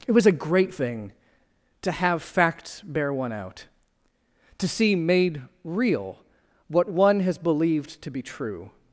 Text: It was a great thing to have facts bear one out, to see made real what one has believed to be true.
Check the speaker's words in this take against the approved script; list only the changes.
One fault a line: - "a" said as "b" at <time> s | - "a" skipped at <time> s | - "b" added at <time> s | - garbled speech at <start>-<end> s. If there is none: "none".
none